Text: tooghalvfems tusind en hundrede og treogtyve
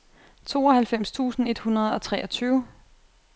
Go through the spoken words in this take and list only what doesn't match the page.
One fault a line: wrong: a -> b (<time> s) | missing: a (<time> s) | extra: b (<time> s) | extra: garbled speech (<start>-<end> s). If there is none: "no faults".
wrong: en -> et (1.4 s)